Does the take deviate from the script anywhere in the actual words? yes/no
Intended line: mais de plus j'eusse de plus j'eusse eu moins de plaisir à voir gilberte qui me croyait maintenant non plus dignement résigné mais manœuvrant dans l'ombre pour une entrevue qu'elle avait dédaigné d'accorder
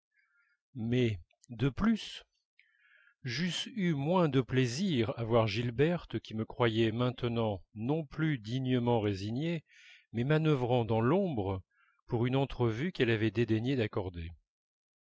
yes